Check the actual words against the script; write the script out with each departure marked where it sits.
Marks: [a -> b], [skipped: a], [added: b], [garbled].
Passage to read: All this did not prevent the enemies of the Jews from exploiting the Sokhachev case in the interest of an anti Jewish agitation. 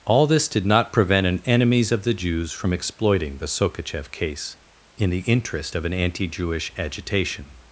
All this did not prevent [the -> an] enemies of the Jews from exploiting the Sokhachev case in the interest of an anti Jewish agitation.